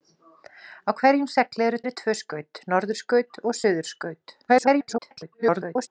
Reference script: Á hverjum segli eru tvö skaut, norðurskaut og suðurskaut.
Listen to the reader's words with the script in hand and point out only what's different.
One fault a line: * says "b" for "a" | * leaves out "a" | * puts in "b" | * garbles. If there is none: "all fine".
* puts in "eru"
* garbles